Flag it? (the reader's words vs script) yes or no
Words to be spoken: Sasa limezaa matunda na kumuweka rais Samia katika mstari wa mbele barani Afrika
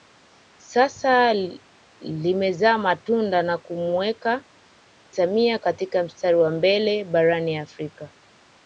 yes